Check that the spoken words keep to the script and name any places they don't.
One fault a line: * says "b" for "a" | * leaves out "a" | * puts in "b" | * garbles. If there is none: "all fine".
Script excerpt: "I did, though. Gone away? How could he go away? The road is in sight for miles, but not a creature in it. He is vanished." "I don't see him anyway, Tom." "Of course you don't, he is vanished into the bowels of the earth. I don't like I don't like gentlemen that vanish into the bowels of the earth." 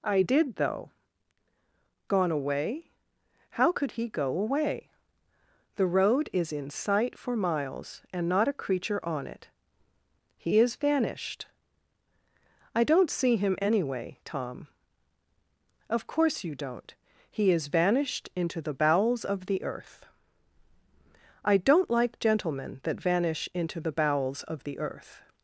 * says "and" for "but"
* says "on" for "in"
* leaves out "I don't like"